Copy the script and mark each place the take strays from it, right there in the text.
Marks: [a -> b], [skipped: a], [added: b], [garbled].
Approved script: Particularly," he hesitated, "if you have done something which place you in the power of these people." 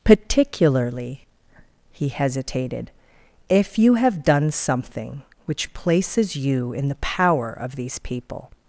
Particularly," he hesitated, "if you have done something which [place -> places] you in the power of these people."